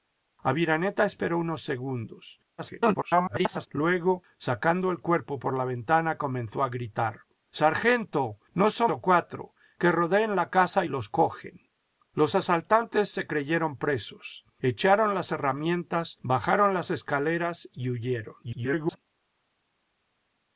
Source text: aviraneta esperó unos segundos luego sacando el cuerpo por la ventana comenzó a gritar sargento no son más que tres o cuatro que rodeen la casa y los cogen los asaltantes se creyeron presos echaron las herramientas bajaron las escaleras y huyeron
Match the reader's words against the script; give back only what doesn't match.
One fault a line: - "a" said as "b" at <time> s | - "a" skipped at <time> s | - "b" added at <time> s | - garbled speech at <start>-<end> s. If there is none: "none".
- garbled speech at 2.6-3.7 s
- "más que tres" skipped at 8.9 s
- garbled speech at 18.4-19.0 s